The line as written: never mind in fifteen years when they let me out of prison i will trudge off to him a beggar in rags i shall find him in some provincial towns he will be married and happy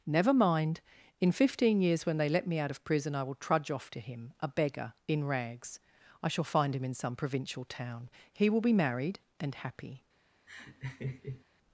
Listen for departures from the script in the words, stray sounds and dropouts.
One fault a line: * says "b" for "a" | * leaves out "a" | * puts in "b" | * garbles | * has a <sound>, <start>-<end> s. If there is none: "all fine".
* says "town" for "towns"
* has a laugh, 10.5-11.4 s